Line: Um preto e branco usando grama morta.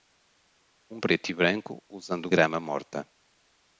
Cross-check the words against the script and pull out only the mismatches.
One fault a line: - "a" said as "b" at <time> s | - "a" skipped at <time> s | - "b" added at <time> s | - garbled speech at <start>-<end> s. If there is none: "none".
none